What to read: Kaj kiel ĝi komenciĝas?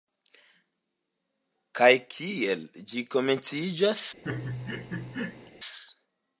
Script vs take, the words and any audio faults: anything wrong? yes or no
yes